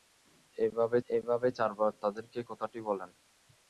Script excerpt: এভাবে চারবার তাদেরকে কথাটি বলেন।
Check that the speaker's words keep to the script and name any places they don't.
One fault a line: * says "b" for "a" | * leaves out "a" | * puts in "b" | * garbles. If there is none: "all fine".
* puts in "এভাবে"